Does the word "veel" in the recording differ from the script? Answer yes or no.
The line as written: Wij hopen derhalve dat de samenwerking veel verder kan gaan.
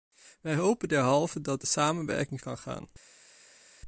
yes